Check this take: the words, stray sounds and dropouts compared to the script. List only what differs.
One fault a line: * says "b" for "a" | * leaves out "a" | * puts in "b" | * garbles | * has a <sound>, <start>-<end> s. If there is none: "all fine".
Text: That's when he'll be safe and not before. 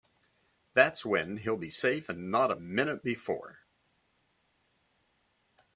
* puts in "a minute"